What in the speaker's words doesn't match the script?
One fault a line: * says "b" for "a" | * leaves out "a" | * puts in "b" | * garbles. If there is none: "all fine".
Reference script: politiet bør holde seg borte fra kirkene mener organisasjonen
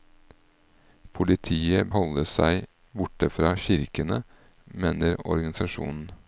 * leaves out "bør"